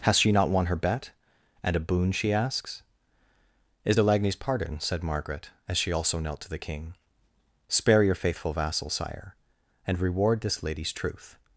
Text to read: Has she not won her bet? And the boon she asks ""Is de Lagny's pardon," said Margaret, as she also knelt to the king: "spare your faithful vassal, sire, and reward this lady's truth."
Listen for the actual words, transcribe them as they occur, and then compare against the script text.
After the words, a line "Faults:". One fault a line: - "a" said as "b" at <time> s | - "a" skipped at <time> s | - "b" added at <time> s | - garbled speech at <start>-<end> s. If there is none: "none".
Has she not won her bet? And a boon she asks ""Is de Lagny's pardon," said Margaret, as she also knelt to the king: "spare your faithful vassal, sire, and reward this lady's truth."
Faults:
- "the" said as "a" at 1.8 s